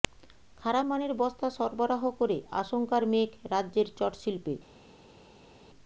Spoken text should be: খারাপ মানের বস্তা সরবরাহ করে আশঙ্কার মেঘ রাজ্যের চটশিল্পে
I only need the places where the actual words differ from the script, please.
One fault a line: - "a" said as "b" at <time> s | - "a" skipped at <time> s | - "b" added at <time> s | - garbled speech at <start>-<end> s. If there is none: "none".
none